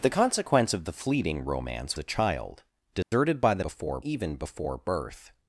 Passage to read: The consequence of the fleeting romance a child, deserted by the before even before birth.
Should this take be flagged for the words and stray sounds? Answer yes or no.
yes